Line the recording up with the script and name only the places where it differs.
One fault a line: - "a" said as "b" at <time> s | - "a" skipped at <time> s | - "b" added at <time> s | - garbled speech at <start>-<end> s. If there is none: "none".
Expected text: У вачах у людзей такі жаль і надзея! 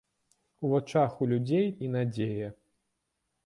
- "такі жаль" skipped at 1.7 s